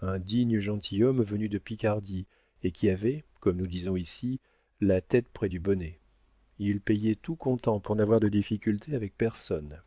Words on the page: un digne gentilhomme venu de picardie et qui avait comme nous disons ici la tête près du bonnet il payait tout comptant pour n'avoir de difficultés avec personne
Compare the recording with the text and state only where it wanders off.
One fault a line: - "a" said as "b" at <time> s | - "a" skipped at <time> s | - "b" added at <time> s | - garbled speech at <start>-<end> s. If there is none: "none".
none